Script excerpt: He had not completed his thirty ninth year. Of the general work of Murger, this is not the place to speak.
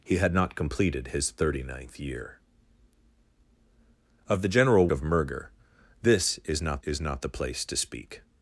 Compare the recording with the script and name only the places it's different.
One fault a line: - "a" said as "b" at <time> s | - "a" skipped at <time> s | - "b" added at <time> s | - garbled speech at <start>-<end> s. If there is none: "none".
- "work" skipped at 4.9 s
- "is not" added at 6.8 s